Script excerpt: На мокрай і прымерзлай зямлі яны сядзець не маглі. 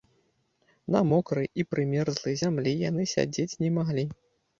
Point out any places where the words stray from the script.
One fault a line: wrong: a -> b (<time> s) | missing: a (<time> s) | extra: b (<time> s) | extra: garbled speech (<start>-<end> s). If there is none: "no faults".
no faults